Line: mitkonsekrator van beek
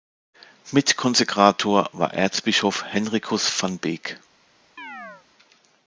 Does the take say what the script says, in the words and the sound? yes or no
no